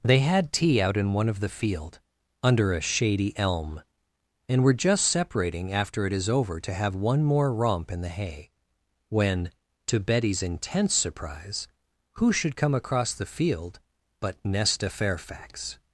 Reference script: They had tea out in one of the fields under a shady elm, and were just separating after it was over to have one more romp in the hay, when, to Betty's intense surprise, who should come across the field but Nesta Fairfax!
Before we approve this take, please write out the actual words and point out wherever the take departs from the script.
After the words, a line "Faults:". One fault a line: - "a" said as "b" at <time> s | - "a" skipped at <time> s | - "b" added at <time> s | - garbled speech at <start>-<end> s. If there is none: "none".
They had tea out in one of the field under a shady elm, and were just separating after it is over to have one more romp in the hay, when, to Betty's intense surprise, who should come across the field but Nesta Fairfax!
Faults:
- "fields" said as "field" at 1.5 s
- "was" said as "is" at 6.1 s